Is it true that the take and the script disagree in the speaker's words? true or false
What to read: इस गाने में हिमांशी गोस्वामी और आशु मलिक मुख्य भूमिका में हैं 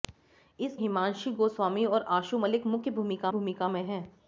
true